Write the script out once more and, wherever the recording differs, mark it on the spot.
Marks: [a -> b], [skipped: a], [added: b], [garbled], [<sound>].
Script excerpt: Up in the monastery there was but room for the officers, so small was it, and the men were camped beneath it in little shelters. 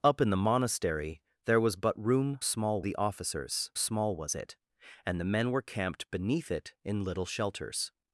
Up in the monastery there was but room [for -> small] the officers, [skipped: so] small was it, and the men were camped beneath it in little shelters.